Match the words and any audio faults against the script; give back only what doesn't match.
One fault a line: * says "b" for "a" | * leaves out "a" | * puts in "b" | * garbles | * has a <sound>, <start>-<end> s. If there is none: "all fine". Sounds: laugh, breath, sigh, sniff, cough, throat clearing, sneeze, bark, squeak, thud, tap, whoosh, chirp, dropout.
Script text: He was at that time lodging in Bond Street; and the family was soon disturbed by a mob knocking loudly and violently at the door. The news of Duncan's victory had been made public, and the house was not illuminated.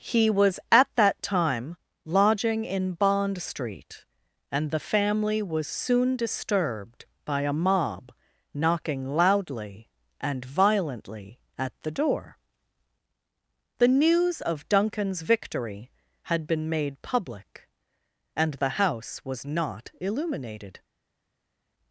all fine